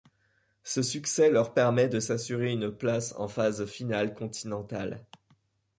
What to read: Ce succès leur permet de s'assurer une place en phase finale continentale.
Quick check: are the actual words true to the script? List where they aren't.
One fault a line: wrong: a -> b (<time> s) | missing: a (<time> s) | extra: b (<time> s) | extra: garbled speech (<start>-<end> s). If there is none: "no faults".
no faults